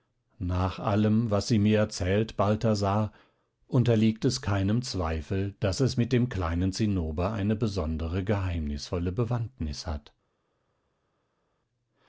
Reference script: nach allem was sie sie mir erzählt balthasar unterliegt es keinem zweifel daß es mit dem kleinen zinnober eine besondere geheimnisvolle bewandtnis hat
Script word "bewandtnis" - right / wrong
right